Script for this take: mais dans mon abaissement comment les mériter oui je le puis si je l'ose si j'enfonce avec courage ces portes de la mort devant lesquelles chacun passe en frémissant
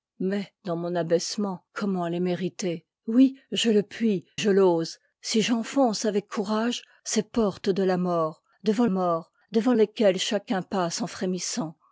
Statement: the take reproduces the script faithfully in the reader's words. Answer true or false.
false